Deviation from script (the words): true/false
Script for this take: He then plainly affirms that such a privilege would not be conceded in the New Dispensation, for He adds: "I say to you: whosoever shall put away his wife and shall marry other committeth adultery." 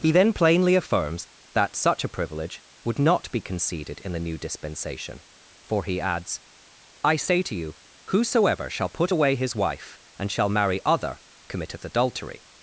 false